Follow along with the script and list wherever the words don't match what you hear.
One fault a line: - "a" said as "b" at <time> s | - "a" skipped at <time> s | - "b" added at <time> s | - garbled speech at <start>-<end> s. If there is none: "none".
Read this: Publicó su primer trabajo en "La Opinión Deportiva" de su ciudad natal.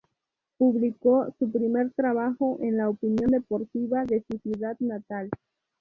none